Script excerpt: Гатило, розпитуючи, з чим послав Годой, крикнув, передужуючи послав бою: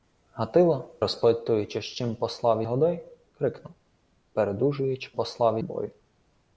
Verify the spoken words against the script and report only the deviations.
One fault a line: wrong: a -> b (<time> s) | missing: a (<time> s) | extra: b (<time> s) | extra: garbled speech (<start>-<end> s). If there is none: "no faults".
no faults